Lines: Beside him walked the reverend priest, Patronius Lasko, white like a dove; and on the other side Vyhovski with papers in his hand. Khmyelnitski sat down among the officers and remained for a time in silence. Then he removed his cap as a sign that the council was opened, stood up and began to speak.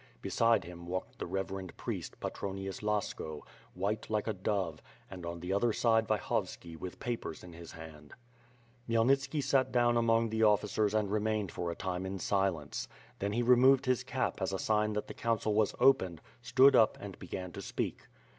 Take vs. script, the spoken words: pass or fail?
pass